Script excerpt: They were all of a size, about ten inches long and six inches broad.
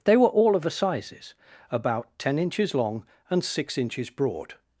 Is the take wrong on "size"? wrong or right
wrong